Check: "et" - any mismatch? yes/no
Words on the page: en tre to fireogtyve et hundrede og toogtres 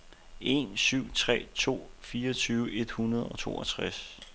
no